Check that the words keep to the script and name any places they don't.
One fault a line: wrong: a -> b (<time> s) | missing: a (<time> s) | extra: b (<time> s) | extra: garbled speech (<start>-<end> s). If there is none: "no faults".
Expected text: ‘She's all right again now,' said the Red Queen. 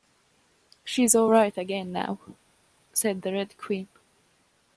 no faults